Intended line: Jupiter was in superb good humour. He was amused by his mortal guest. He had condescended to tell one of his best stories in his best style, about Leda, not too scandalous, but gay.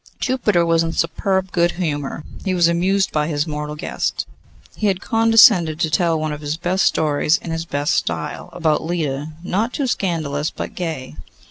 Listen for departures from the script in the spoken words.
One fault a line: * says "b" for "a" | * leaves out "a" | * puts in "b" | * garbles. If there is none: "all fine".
all fine